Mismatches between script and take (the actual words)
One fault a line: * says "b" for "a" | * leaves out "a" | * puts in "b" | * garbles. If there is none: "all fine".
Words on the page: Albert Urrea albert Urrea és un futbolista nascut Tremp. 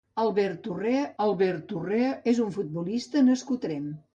all fine